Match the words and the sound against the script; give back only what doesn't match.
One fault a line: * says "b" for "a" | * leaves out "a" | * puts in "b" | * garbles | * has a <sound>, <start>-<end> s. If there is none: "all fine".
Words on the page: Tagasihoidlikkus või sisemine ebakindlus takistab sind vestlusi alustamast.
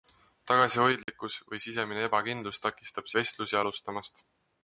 * has a dropout, 1.0-1.1 s
* leaves out "sind"